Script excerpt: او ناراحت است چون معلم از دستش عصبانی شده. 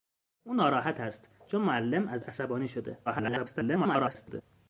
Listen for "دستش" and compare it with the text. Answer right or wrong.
wrong